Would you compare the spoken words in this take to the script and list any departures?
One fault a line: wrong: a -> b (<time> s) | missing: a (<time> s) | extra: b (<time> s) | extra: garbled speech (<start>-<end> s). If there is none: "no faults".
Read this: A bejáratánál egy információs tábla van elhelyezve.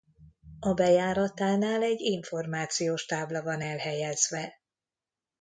no faults